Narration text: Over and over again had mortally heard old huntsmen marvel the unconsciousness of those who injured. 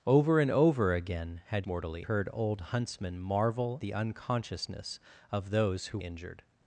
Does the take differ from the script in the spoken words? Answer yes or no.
no